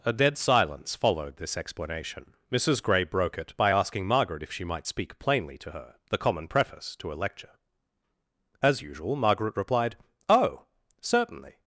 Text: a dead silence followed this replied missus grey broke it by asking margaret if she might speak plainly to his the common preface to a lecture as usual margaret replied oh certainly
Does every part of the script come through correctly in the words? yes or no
no